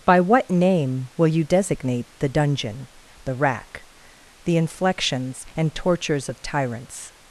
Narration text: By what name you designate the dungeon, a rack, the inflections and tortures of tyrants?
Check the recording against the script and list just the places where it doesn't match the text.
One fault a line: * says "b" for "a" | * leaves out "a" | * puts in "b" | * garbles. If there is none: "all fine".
* puts in "will"
* says "the" for "a"